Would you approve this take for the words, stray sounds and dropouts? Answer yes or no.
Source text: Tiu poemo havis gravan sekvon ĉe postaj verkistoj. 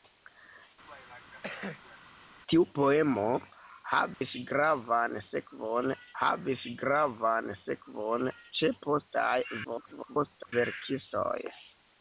no